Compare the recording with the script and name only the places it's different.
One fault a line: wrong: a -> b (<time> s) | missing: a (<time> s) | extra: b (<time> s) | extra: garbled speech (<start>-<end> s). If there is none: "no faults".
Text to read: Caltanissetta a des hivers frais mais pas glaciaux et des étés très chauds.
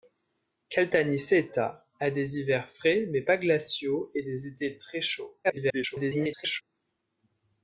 extra: garbled speech (5.4-6.6 s)